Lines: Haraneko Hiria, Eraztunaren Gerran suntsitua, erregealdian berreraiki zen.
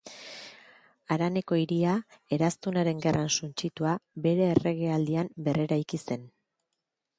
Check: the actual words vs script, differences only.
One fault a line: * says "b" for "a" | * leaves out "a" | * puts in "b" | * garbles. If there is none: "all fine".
* puts in "bere"